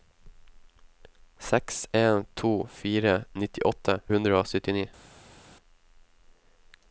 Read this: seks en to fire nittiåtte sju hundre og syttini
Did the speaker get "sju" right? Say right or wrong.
wrong